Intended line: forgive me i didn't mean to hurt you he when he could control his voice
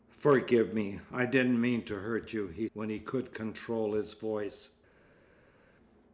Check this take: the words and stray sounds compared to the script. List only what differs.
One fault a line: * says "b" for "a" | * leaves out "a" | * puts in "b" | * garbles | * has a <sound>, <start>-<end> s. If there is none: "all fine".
all fine